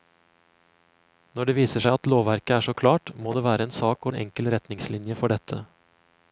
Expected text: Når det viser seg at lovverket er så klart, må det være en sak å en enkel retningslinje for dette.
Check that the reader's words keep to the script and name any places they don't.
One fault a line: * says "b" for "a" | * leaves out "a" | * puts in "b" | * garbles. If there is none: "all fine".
all fine